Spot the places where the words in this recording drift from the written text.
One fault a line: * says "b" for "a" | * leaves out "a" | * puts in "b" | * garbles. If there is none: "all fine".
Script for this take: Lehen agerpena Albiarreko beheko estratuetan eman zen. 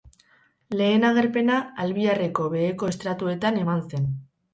all fine